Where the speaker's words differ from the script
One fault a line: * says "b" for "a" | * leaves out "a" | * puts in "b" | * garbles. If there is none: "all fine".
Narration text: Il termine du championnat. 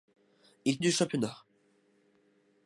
* leaves out "termine"